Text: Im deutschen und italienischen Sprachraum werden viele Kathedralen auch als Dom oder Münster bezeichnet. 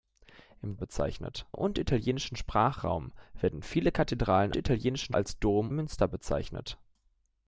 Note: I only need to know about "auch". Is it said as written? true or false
false